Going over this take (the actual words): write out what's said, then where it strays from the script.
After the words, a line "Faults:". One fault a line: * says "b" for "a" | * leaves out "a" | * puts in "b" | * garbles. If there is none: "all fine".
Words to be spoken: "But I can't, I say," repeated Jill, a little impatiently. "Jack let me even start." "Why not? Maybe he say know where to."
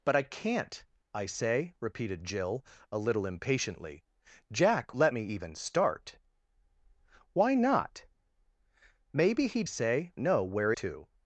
"But I can't, I say," repeated Jill, a little impatiently. "Jack let me even start." "Why not? Maybe he say know where to."
Faults:
all fine